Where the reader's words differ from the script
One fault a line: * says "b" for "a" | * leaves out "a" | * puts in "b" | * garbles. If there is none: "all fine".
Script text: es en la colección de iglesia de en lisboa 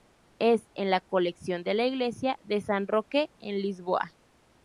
* puts in "la"
* puts in "san roque"